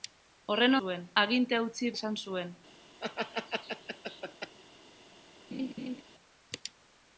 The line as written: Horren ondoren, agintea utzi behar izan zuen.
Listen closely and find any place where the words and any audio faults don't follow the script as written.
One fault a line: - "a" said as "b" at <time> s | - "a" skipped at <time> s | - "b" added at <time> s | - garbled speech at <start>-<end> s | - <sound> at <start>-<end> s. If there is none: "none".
- "ondoren" said as "zuen" at 0.8 s
- "behar" skipped at 1.9 s
- laugh at 3.0-4.6 s
- laugh at 5.5-6.0 s